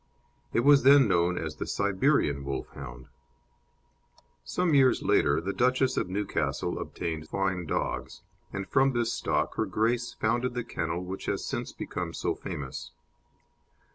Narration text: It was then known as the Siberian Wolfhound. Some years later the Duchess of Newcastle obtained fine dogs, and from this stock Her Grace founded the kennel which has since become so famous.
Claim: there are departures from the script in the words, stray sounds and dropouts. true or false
false